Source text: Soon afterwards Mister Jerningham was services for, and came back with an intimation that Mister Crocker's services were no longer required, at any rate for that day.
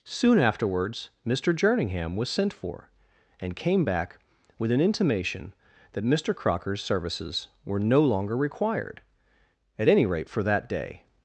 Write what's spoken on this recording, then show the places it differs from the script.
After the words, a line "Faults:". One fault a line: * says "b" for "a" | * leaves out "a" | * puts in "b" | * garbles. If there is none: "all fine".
Soon afterwards Mister Jerningham was sent for, and came back with an intimation that Mister Crocker's services were no longer required, at any rate for that day.
Faults:
* says "sent" for "services"